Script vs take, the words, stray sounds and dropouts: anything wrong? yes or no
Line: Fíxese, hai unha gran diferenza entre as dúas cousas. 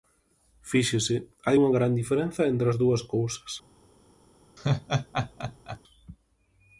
yes